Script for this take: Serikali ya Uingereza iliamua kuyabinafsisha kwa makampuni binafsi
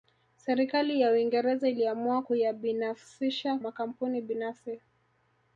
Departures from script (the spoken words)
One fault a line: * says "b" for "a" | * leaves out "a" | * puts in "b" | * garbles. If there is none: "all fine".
* leaves out "kwa"